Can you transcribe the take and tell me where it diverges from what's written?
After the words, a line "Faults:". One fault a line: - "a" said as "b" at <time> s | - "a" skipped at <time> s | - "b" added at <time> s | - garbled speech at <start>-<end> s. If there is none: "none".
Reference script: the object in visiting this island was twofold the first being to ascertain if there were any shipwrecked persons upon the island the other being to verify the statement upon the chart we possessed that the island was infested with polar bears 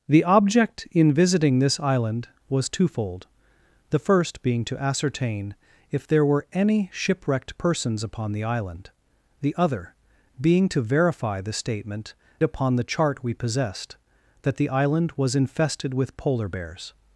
the object in visiting this island was twofold the first being to ascertain if there were any shipwrecked persons upon the island the other being to verify the statement upon the chart we possessed that the island was infested with polar bears
Faults:
none